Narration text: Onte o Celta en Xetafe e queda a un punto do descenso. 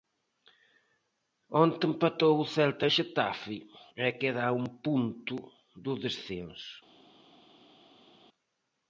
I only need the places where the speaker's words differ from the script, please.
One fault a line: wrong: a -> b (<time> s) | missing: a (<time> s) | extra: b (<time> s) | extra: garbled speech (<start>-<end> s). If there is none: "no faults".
extra: empatou (1.9 s)